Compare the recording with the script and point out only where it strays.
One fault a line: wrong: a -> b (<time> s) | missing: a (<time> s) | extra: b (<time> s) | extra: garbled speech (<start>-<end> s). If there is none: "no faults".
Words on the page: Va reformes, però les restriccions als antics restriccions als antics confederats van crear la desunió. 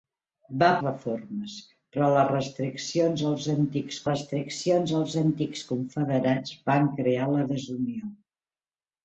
no faults